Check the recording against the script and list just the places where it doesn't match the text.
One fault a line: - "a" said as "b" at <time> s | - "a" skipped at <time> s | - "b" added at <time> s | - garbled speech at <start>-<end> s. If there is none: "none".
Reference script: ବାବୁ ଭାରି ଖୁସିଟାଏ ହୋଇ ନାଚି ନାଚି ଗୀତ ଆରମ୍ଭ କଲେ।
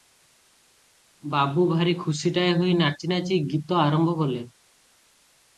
none